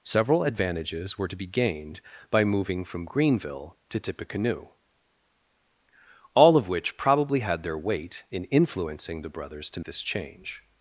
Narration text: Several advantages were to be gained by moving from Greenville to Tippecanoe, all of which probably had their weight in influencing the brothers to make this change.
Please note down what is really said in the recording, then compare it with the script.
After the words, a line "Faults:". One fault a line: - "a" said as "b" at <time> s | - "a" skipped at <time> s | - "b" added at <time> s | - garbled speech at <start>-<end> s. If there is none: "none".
Several advantages were to be gained by moving from Greenville to Tippecanoe, all of which probably had their weight in influencing the brothers to this change.
Faults:
- "make" skipped at 9.8 s